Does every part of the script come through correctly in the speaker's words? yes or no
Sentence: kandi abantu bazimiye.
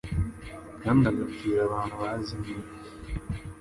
no